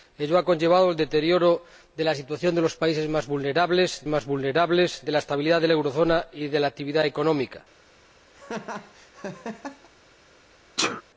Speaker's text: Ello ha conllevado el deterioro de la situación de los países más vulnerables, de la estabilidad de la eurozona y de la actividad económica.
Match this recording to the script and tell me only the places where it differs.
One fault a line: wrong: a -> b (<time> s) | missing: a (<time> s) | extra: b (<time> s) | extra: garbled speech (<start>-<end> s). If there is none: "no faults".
extra: más vulnerables (4.1 s)